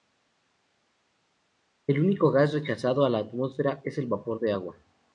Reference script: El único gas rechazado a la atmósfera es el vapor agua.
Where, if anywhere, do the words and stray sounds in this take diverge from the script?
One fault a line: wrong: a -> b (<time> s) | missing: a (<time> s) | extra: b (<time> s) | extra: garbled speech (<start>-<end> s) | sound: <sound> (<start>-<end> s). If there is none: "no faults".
extra: de (4.4 s)